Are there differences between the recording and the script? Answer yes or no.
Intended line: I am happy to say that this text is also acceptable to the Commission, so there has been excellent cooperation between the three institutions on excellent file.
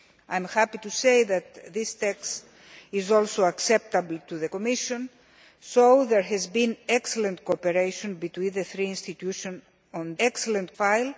no